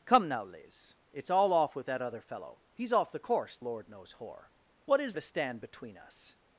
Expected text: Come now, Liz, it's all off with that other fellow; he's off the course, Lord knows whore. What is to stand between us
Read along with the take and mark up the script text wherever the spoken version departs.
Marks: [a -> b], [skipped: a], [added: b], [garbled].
Come now, Liz, it's all off with that other fellow; he's off the course, Lord knows whore. What is to stand between us